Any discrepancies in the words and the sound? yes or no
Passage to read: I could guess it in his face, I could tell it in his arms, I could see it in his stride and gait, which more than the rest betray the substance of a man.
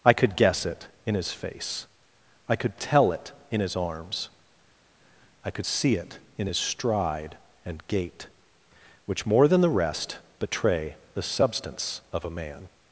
no